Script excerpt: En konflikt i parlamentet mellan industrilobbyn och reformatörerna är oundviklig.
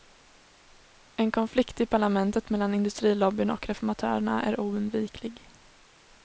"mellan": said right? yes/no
yes